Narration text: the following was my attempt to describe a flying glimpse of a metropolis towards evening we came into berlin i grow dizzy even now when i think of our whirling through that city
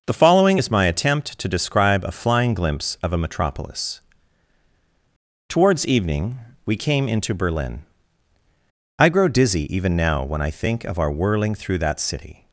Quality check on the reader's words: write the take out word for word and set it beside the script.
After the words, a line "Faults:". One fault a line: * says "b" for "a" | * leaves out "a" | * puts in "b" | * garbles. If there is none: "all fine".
the following is my attempt to describe a flying glimpse of a metropolis towards evening we came into berlin i grow dizzy even now when i think of our whirling through that city
Faults:
* says "is" for "was"